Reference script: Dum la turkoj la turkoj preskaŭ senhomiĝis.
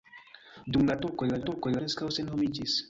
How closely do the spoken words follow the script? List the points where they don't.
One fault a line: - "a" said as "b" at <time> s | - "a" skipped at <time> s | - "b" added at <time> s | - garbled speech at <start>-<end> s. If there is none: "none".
none